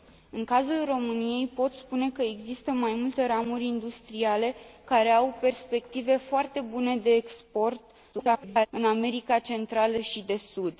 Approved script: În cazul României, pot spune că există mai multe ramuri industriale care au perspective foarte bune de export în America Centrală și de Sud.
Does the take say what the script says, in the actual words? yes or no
no